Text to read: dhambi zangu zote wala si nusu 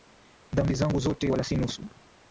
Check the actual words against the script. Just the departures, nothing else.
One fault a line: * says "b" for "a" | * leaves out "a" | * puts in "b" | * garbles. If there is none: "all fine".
all fine